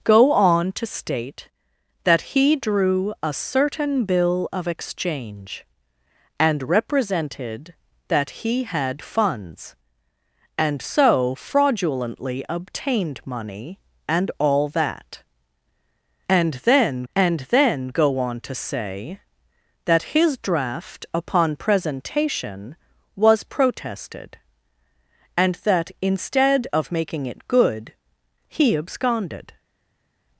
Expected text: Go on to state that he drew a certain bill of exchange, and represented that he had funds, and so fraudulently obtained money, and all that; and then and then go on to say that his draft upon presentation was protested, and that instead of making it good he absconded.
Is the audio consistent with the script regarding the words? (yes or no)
yes